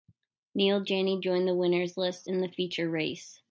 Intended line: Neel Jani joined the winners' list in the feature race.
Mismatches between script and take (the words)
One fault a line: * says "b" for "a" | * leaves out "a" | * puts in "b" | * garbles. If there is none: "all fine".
all fine